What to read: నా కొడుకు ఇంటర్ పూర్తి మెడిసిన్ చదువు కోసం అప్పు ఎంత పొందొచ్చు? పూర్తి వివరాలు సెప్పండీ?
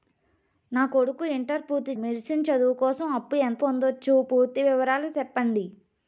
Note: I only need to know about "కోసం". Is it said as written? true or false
true